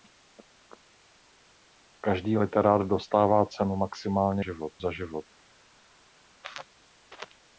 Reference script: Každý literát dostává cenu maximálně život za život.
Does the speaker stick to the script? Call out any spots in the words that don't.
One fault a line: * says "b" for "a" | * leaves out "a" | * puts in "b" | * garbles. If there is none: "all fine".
all fine